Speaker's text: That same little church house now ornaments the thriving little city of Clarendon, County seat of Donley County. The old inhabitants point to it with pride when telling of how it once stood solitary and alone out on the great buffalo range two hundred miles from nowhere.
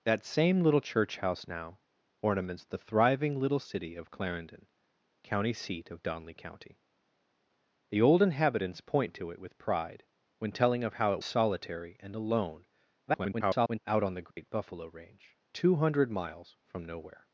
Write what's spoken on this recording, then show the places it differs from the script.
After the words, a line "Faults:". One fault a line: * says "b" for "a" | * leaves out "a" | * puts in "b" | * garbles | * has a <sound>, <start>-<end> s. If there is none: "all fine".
That same little church house now ornaments the thriving little city of Clarendon, County seat of Donley County. The old inhabitants point to it with pride when telling of how it solitary and alone [garbled] out on the great buffalo range two hundred miles from nowhere.
Faults:
* leaves out "once stood"
* garbles
* has a dropout, 14.3-14.4 s